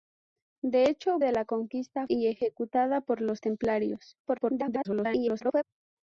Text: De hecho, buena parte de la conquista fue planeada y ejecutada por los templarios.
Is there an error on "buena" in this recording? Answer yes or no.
yes